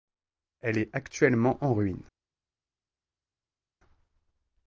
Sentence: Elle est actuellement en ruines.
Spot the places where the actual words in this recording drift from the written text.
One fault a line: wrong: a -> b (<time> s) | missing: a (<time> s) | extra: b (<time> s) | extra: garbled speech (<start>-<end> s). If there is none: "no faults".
no faults